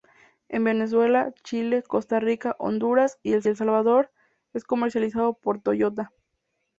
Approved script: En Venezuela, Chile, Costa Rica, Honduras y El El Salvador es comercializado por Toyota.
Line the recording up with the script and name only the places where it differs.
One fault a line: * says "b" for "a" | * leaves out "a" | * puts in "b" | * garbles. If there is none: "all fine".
all fine